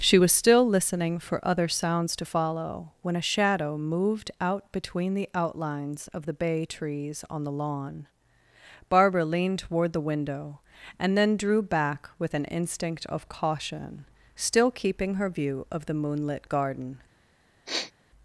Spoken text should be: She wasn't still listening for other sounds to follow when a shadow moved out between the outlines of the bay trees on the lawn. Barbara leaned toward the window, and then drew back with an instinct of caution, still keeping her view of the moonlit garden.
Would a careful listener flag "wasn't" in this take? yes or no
yes